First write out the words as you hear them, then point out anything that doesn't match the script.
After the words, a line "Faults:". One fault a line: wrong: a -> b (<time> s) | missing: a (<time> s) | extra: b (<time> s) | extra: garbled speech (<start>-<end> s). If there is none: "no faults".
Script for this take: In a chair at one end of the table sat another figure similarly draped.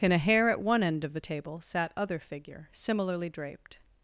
In a hair at one end of the table sat other figure similarly draped.
Faults:
wrong: chair -> hair (0.2 s)
wrong: another -> other (1.9 s)